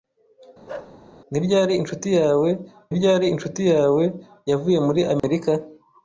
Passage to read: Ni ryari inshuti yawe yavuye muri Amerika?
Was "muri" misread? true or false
false